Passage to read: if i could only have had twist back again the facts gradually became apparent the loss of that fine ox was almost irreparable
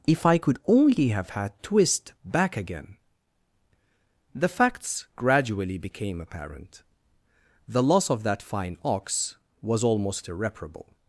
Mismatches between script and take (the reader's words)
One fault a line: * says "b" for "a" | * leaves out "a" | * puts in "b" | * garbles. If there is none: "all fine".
all fine